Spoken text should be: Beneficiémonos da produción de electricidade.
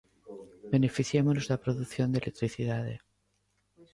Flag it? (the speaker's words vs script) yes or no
no